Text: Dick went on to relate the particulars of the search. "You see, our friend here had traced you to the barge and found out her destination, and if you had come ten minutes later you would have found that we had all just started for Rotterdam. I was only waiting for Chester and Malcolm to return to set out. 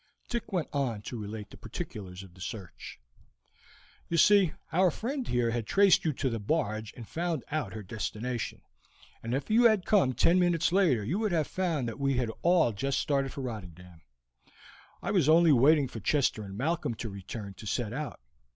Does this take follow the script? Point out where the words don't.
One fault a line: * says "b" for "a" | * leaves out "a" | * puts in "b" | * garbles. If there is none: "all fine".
all fine